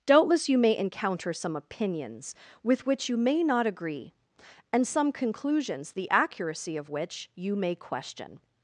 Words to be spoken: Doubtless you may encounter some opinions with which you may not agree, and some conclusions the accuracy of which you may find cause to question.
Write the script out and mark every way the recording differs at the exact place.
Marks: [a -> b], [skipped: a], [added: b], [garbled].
Doubtless you may encounter some opinions with which you may not agree, and some conclusions the accuracy of which you may [skipped: find cause to] question.